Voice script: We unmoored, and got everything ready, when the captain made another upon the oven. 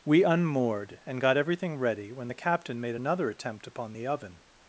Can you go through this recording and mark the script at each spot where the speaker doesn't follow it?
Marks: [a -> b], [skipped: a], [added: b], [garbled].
We unmoored, and got everything ready, when the captain made another [added: attempt] upon the oven.